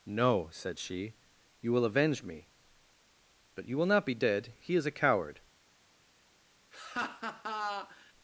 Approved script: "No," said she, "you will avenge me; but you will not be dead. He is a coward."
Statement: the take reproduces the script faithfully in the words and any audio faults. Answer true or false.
false